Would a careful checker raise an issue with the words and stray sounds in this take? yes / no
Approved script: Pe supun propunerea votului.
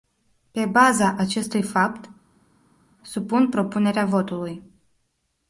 yes